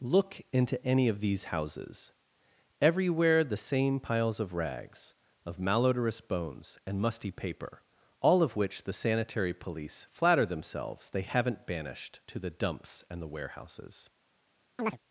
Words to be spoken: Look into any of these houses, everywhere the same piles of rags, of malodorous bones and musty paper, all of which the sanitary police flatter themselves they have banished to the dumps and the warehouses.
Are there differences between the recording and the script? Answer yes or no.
yes